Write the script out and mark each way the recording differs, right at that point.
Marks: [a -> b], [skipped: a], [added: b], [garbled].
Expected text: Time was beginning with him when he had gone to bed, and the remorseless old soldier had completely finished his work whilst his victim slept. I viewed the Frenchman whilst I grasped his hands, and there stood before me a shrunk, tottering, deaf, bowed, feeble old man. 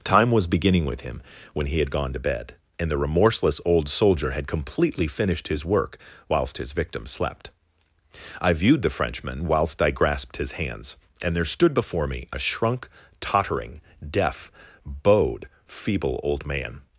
Time was beginning with him when he had gone to bed, and the remorseless old soldier had completely finished his work whilst his victim slept. I viewed the Frenchman whilst I grasped his hands, and there stood before me a shrunk, tottering, deaf, bowed, feeble old man.